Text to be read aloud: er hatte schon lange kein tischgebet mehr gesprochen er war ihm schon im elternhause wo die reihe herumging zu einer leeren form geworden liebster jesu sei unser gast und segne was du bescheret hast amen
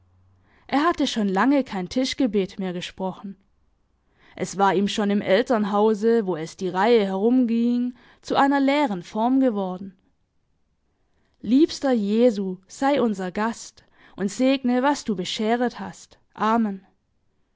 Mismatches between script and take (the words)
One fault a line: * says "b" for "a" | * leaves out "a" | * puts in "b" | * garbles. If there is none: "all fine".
* says "es" for "er"
* puts in "es"